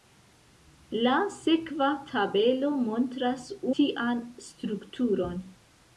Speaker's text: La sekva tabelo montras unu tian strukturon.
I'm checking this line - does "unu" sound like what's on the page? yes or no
no